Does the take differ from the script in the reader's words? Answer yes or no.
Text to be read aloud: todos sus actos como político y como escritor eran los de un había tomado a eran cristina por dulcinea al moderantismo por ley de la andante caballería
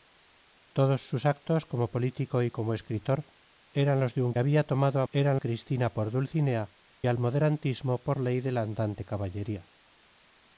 no